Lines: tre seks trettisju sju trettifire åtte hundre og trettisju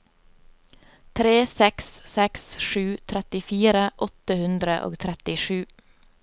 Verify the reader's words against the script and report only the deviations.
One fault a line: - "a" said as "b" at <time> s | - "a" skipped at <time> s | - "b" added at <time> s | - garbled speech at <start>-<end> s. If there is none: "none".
- "trettisju" said as "seks" at 2.1 s